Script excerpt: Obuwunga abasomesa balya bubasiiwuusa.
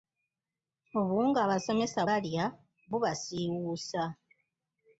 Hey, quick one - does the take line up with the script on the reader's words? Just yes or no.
yes